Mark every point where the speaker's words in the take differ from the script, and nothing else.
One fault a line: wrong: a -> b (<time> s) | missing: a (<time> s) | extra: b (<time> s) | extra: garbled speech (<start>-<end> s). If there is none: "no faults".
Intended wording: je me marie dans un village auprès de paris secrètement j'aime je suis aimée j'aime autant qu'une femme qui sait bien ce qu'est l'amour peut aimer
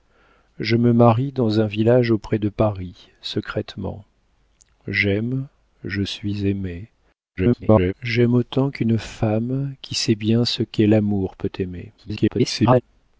extra: garbled speech (7.4-7.9 s)
extra: garbled speech (12.0-12.8 s)